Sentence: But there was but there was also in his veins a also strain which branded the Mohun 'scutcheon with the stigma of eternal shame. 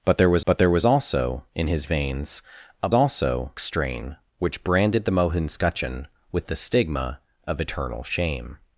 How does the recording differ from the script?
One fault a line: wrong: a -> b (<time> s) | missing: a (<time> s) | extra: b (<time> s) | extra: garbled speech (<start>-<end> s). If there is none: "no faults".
no faults